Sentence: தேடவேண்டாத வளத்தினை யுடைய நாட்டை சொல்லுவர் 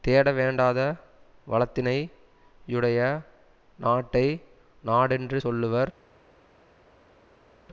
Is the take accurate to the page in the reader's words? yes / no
no